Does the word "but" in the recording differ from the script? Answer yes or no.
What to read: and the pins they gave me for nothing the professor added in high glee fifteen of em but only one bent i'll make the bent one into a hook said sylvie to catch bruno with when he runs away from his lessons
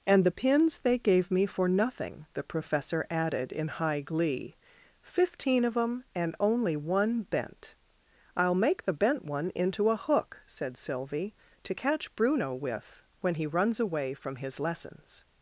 yes